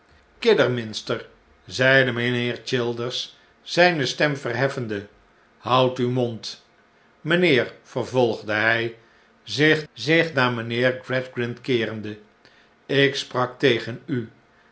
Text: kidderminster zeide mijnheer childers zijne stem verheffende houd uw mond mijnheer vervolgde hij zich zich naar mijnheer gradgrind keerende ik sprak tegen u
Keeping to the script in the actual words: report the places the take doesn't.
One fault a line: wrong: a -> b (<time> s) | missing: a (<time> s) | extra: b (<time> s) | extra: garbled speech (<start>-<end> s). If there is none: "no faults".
no faults